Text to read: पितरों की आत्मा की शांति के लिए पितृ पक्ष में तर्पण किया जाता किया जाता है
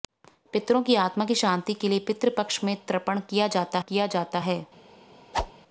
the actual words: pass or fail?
pass